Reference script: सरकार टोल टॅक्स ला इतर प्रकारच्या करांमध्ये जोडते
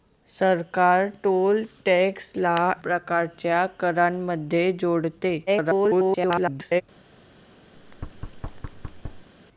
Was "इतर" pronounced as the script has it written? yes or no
no